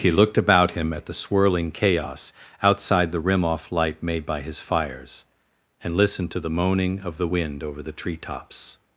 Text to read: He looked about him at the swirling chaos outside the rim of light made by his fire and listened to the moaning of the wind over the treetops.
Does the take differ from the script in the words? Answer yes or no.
yes